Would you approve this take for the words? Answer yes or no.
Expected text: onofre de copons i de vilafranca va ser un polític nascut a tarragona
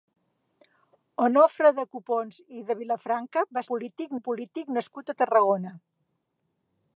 no